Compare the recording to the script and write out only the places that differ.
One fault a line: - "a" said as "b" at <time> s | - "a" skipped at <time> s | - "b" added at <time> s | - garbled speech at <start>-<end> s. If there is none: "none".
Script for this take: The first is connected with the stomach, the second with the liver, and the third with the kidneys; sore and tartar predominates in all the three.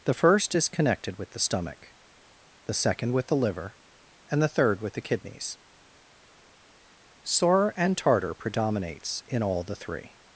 none